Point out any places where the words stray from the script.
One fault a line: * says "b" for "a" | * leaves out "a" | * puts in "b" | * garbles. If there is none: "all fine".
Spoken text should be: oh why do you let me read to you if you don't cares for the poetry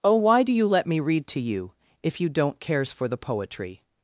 all fine